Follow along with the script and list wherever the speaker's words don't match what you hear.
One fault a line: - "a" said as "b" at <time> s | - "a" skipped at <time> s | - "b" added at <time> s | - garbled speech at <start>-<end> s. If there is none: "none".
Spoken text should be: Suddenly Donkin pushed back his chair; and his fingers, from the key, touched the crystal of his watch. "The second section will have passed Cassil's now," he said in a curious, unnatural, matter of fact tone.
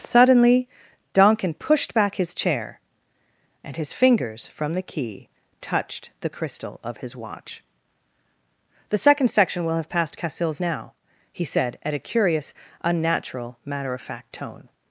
- "in" said as "at" at 11.8 s